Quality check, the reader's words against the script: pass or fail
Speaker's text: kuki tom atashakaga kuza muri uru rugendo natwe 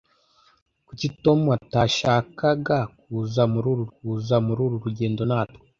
fail